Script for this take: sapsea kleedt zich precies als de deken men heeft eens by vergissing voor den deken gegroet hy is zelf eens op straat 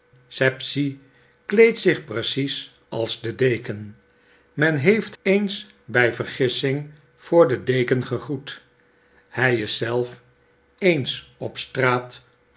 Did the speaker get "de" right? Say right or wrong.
right